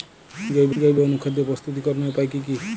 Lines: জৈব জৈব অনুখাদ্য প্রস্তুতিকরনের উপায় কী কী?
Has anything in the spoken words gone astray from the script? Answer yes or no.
no